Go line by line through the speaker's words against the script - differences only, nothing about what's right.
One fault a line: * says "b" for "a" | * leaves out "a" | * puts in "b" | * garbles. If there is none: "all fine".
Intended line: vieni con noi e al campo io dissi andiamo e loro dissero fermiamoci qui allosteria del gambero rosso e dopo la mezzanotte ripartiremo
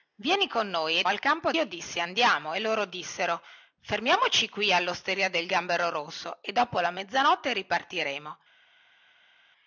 all fine